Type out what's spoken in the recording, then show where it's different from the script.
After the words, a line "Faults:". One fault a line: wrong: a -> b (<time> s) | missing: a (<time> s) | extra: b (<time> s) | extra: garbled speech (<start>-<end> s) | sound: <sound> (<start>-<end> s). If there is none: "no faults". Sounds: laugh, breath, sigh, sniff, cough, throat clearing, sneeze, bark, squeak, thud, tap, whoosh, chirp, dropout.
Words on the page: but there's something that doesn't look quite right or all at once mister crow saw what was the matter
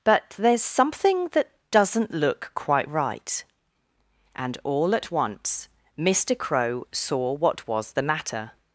but there's something that doesn't look quite right and all at once mister crow saw what was the matter
Faults:
wrong: or -> and (4.3 s)